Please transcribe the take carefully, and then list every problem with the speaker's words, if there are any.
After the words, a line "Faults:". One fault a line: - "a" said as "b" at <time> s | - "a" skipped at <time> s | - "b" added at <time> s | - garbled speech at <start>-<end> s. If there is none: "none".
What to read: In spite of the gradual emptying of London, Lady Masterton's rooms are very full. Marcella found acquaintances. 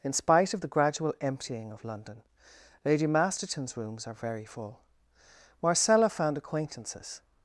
In spite of the gradual emptying of London, Lady Masterton's rooms are very full. Marcella found acquaintances.
Faults:
none